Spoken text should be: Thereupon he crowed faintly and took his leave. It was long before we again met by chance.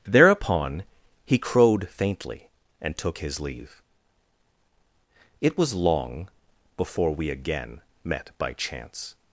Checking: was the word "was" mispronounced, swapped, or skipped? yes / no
no